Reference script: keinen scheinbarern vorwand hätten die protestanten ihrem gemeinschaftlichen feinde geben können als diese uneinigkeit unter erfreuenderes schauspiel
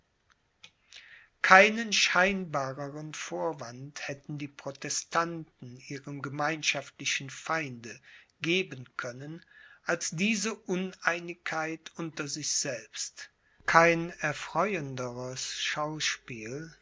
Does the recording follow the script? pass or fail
fail